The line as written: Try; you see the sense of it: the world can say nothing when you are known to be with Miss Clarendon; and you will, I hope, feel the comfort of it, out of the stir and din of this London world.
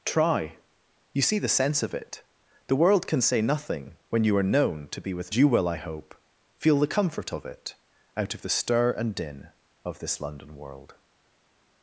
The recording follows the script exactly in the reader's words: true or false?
false